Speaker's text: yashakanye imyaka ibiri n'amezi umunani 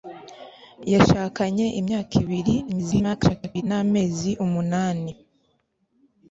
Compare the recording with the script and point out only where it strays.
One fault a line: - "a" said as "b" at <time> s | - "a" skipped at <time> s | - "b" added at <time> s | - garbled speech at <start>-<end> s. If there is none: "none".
- garbled speech at 2.7-3.6 s